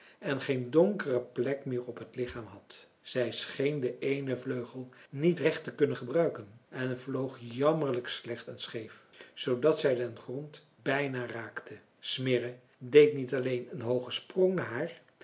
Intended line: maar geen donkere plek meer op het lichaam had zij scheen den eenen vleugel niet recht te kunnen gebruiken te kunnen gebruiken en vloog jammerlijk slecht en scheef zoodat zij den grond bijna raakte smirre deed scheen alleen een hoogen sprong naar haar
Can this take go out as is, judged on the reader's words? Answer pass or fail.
fail